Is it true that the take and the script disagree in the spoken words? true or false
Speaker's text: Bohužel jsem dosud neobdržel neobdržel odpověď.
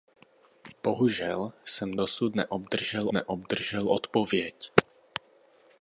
false